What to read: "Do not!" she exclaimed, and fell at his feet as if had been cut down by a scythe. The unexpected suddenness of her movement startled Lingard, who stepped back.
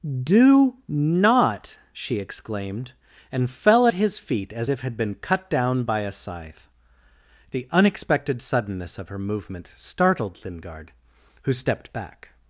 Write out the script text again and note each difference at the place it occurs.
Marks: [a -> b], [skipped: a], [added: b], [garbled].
"Do not!" she exclaimed, and fell at his feet as if had been cut down by a scythe. The unexpected suddenness of her movement startled Lingard, who stepped back.